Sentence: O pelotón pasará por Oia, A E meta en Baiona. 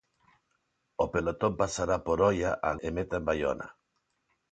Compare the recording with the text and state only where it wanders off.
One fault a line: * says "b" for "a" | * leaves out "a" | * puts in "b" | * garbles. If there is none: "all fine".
all fine